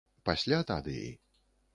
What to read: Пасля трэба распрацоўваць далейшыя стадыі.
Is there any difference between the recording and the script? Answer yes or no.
yes